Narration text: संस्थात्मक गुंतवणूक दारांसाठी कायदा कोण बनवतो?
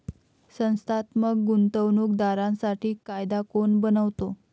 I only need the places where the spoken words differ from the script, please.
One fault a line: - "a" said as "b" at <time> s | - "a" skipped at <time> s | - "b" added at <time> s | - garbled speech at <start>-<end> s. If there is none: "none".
none